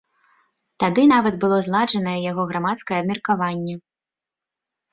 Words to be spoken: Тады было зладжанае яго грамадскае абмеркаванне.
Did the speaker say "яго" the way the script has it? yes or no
yes